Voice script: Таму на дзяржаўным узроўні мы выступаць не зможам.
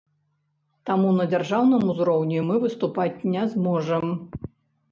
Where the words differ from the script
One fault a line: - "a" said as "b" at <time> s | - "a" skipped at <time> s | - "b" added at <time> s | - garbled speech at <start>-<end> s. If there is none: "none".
none